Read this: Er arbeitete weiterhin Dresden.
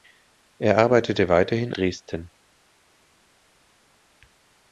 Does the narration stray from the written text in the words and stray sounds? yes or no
no